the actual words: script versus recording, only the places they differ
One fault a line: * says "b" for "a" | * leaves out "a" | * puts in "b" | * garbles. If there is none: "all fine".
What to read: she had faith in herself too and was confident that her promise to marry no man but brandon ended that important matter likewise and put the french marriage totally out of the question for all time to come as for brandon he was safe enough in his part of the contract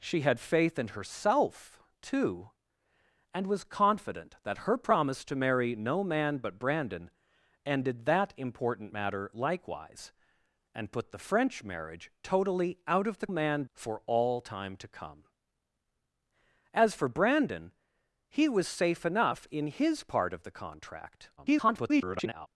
* says "man" for "question"
* garbles